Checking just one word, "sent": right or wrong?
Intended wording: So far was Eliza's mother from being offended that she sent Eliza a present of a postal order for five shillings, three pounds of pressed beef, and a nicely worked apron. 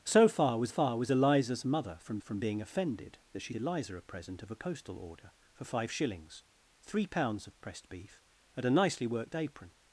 wrong